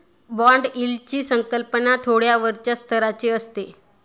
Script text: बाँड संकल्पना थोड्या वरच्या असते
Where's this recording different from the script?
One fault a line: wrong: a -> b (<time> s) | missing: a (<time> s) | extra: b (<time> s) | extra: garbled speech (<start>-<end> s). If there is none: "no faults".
extra: यील्डची (0.8 s)
extra: स्तराची (2.8 s)